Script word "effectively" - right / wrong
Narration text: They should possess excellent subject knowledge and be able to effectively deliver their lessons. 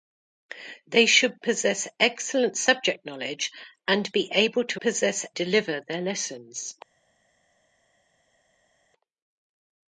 wrong